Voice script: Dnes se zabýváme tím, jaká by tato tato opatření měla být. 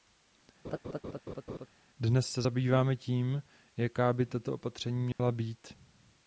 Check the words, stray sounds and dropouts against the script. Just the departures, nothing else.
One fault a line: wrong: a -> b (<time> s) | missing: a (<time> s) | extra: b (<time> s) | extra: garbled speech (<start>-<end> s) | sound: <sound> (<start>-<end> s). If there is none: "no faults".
sound: laugh (0.6-1.7 s)
missing: tato (4.5 s)
sound: dropout (5.1-5.2 s)